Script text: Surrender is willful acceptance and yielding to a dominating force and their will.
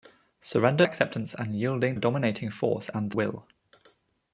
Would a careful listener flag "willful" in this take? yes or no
yes